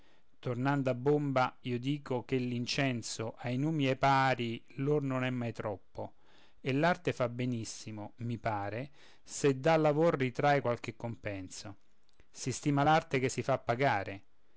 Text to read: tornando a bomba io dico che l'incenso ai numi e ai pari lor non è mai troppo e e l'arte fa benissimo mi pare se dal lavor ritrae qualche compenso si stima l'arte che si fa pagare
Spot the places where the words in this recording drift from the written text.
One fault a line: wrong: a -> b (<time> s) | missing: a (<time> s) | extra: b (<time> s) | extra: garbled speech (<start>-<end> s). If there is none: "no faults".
missing: e (6.7 s)